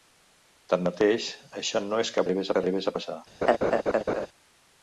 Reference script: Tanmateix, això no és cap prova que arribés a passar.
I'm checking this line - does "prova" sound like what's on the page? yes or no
no